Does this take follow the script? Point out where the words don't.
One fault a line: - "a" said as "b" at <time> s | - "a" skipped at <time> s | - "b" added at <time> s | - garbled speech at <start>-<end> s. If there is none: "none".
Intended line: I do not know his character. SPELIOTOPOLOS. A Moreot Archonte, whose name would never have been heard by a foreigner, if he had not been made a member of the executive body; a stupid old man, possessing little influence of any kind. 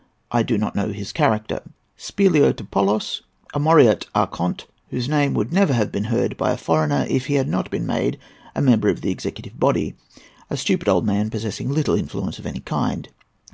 none